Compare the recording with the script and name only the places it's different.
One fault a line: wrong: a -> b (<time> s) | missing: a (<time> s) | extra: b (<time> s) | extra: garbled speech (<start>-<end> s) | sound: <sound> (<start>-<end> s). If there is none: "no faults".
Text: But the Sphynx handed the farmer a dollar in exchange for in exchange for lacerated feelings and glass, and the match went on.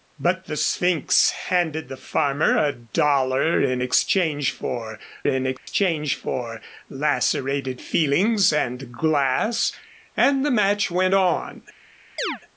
sound: dropout (5.6-5.7 s)
sound: chirp (12.2-12.4 s)